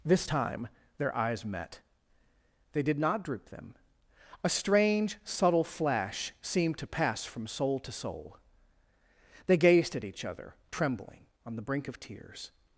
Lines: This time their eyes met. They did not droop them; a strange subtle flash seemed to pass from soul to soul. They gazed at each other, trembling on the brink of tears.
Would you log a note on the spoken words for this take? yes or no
no